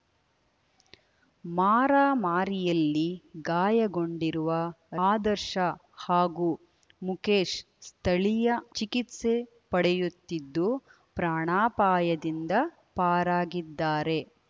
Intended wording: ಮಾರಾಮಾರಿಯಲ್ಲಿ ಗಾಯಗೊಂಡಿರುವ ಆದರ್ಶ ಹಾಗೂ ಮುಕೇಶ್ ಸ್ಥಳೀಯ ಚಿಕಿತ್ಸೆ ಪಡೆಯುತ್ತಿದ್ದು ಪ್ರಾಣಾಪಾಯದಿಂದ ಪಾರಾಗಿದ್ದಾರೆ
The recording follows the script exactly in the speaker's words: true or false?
true